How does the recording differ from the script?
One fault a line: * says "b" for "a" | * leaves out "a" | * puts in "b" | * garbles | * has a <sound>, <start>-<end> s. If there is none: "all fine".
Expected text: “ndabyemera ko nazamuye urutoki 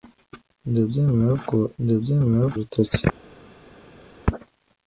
* says "ndabyemera" for "nazamuye"